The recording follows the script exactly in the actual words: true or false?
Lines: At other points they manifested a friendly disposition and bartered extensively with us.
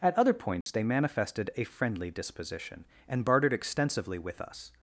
true